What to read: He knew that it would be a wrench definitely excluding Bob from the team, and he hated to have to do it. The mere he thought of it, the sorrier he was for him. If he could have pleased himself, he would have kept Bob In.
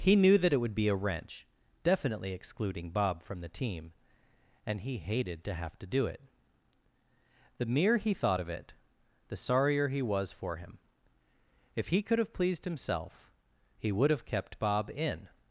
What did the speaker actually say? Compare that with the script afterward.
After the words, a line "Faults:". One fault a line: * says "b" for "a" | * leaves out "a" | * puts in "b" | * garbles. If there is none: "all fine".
He knew that it would be a wrench definitely excluding Bob from the team, and he hated to have to do it. The mere he thought of it, the sorrier he was for him. If he could have pleased himself, he would have kept Bob In.
Faults:
all fine